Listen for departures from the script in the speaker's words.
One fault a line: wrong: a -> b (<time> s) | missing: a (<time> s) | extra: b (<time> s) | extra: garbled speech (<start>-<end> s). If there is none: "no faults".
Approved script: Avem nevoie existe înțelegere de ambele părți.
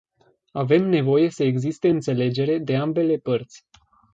extra: să (1.3 s)